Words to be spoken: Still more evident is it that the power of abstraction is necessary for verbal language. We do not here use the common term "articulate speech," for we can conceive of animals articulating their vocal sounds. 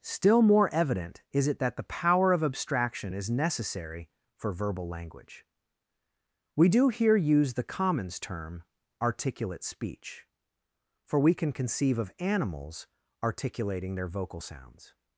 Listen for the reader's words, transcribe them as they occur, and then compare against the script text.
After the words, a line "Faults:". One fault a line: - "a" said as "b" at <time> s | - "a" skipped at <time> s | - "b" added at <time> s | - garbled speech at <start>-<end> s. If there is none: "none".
Still more evident is it that the power of abstraction is necessary for verbal language. We do here use the commons term "articulate speech," for we can conceive of animals articulating their vocal sounds.
Faults:
- "not" skipped at 6.9 s
- "common" said as "commons" at 7.6 s